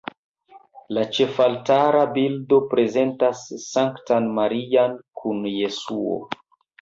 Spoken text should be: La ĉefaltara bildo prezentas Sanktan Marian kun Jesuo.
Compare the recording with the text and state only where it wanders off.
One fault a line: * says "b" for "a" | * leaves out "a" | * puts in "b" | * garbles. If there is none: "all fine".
all fine